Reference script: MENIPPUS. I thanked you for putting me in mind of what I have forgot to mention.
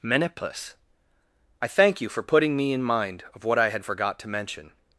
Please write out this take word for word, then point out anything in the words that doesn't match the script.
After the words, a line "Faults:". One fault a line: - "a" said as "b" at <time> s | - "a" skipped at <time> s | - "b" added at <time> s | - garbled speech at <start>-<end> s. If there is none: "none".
MENIPPUS. I thank you for putting me in mind of what I had forgot to mention.
Faults:
- "thanked" said as "thank" at 1.7 s
- "have" said as "had" at 3.7 s